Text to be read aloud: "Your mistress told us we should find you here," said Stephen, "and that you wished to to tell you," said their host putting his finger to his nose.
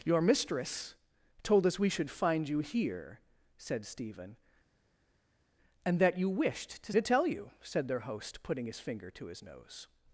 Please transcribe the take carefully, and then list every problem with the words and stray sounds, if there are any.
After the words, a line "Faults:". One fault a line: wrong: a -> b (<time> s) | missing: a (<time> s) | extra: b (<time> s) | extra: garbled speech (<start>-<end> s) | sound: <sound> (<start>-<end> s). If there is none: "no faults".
"Your mistress told us we should find you here," said Stephen, "and that you wished to to tell you," said their host putting his finger to his nose.
Faults:
no faults